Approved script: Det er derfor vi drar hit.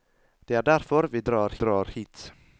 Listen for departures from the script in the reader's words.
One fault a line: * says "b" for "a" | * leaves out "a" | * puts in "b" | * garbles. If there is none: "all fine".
* puts in "drar"